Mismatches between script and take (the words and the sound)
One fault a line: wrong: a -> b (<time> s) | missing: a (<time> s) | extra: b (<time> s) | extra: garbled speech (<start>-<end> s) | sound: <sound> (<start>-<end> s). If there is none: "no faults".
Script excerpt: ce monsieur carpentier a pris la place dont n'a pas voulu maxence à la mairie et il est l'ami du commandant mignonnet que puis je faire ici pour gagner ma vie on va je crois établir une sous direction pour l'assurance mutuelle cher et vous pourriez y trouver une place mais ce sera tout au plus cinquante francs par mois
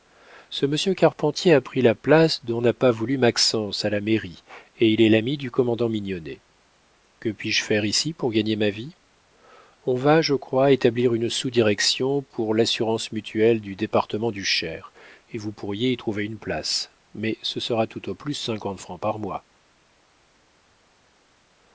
extra: du département du (13.6 s)